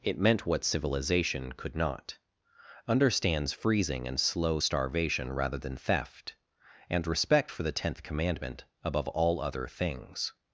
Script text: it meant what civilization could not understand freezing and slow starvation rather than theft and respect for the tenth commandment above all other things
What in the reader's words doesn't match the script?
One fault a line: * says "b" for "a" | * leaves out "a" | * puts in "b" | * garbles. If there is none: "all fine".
* says "understands" for "understand"